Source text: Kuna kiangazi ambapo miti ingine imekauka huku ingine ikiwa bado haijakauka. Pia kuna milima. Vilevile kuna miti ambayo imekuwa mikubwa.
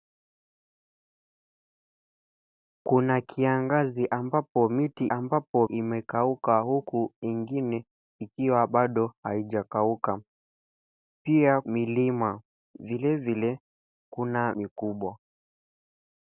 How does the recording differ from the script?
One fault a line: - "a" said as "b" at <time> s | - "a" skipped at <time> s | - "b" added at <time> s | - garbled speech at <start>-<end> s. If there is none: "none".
- "ingine" said as "ambapo" at 5.1 s
- "kuna" skipped at 11.6 s
- "miti ambayo imekuwa" skipped at 14.5 s